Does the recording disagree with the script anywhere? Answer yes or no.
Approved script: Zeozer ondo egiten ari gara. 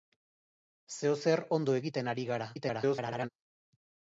yes